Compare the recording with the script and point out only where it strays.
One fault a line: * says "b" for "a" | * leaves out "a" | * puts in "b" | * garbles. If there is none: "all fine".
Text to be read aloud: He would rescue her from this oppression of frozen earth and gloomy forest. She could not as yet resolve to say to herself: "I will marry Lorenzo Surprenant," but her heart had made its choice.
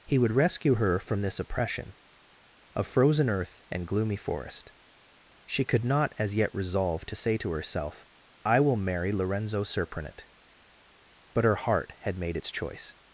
all fine